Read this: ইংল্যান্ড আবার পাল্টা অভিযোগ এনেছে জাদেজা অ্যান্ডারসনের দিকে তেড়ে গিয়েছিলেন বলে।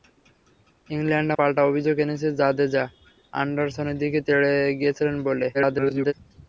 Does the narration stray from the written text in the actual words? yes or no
yes